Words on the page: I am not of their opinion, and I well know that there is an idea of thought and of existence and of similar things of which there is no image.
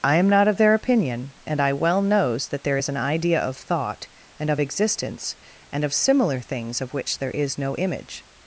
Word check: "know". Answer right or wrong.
wrong